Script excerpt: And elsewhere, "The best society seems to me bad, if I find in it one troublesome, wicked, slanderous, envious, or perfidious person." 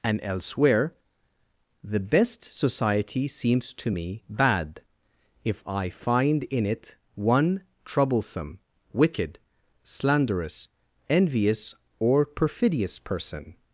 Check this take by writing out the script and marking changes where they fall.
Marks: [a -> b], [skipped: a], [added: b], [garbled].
And elsewhere, "The best society seems to me bad, if I find in it one troublesome, wicked, slanderous, envious, or perfidious person."